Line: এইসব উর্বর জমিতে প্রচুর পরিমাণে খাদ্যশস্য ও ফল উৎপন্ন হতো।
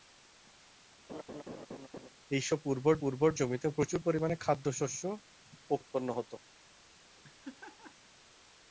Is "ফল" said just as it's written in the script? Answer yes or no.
no